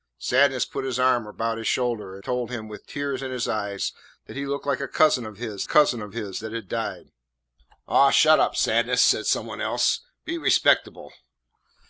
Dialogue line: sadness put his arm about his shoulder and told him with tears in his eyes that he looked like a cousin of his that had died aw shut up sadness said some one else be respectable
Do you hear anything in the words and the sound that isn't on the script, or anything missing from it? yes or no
yes